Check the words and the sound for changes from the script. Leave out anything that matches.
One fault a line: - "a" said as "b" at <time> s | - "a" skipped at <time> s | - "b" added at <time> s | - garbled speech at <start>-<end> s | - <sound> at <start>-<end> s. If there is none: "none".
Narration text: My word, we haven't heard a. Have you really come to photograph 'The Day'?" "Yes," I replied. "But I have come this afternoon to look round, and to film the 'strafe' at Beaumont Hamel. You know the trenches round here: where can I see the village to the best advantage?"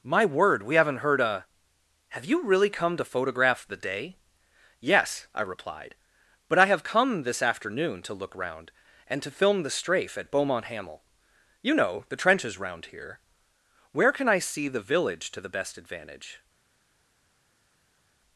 none